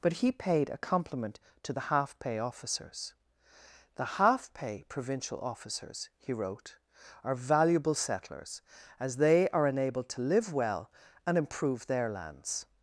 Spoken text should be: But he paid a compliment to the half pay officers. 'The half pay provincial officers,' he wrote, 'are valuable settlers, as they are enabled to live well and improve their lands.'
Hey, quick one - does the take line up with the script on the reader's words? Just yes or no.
yes